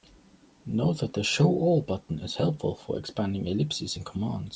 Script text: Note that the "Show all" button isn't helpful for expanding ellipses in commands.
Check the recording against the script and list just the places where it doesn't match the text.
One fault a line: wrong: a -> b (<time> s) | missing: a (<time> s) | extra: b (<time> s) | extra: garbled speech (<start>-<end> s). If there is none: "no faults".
wrong: isn't -> is (2.2 s)